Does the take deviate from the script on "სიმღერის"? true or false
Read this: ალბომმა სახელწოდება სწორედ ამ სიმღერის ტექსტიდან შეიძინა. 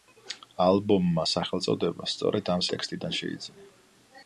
true